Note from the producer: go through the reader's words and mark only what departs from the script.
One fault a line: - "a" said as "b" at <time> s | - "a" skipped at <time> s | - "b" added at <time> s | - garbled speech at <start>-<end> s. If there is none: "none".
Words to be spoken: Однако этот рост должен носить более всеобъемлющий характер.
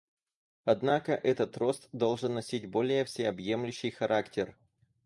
none